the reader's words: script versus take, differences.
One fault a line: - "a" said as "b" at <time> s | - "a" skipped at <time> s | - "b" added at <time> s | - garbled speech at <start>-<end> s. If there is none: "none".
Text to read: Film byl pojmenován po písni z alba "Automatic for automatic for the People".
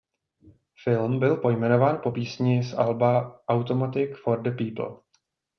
- "automatic for" skipped at 4.4 s